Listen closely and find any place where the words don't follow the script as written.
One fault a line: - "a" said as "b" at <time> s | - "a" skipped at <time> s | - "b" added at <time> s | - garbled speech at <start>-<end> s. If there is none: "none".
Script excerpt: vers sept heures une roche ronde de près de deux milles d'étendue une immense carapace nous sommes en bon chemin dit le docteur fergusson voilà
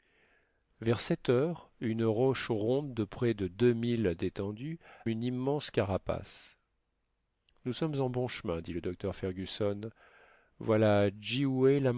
none